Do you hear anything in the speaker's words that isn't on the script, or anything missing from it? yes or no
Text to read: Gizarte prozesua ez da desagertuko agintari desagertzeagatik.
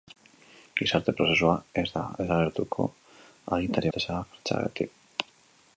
no